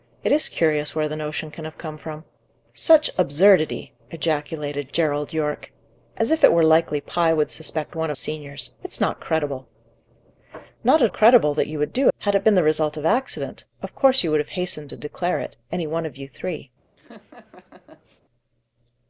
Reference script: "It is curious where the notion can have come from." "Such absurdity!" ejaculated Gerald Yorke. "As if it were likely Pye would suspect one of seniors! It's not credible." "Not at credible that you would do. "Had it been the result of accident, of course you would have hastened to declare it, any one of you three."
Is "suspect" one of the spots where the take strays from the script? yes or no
no